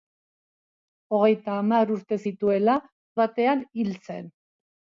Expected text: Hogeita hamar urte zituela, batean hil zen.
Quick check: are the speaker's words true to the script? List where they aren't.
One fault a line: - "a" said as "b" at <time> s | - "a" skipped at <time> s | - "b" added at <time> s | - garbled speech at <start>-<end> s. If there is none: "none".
none